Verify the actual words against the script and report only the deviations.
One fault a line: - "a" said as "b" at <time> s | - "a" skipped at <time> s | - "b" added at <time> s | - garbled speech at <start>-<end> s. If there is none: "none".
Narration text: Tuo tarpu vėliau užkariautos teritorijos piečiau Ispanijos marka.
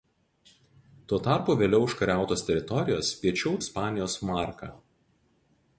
none